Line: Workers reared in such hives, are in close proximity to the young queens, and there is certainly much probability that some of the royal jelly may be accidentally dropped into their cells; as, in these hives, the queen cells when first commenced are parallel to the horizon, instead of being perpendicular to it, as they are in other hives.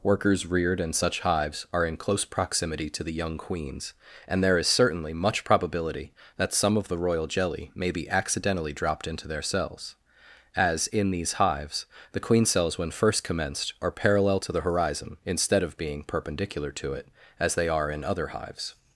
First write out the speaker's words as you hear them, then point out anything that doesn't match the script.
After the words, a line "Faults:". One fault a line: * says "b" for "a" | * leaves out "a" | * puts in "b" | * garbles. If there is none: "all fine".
Workers reared in such hives, are in close proximity to the young queens, and there is certainly much probability that some of the royal jelly may be accidentally dropped into their cells; as, in these hives, the queen cells when first commenced are parallel to the horizon, instead of being perpendicular to it, as they are in other hives.
Faults:
all fine